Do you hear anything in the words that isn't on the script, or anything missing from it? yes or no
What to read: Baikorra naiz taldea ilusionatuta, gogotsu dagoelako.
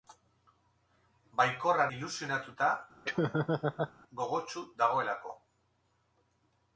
yes